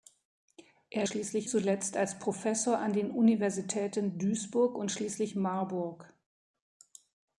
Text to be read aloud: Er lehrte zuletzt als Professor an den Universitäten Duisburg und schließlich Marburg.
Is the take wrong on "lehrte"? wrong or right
wrong